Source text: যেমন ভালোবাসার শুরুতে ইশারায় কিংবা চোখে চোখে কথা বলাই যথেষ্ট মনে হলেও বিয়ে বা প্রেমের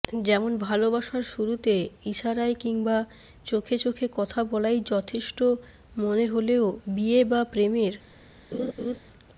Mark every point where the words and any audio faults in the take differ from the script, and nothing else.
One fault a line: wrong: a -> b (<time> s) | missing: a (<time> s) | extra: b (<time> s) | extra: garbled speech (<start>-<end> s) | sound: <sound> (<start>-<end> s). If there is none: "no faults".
sound: laugh (8.5-9.0 s)